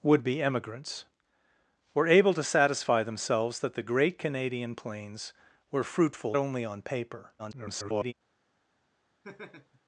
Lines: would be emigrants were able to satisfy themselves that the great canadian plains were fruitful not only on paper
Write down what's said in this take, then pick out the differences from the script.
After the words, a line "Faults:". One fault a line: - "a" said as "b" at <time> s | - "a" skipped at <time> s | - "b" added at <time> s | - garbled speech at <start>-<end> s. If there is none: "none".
would be emigrants were able to satisfy themselves that the great canadian plains were fruitful only on paper [garbled]
Faults:
- "not" skipped at 6.3 s
- garbled speech at 7.4-8.1 s